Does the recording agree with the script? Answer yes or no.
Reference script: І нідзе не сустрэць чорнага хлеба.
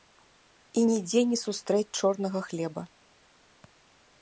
yes